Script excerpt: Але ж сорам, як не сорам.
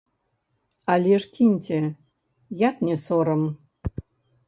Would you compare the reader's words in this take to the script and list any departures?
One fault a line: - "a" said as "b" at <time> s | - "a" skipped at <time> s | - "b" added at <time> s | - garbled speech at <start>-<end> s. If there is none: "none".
- "сорам" said as "кіньце" at 1.3 s